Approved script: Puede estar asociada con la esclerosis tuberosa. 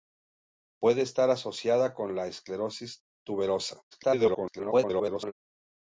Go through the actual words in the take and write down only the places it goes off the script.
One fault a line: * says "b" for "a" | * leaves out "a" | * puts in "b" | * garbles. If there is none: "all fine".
* garbles